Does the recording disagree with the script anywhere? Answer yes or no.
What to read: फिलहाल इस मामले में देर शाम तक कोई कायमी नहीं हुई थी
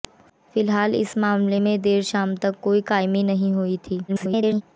yes